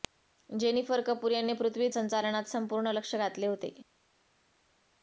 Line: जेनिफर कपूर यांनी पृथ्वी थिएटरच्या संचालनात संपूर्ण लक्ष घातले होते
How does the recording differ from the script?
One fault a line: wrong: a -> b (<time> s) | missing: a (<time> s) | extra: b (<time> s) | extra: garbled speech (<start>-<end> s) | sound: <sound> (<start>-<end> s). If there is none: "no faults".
missing: थिएटरच्या (1.9 s)